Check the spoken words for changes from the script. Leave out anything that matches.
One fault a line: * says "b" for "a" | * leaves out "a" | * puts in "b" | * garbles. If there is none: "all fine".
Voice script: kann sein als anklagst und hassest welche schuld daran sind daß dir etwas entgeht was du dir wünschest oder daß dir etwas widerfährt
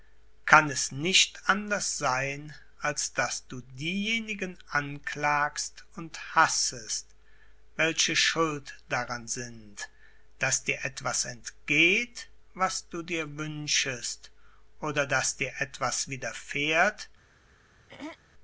* puts in "es nicht anders"
* puts in "daß du diejenigen"